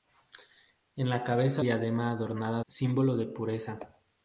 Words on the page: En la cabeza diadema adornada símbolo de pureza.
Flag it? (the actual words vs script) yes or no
no